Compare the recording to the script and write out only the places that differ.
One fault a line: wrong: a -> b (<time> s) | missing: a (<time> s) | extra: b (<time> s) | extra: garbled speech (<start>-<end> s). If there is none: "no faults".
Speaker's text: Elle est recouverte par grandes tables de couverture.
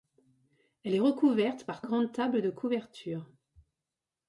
no faults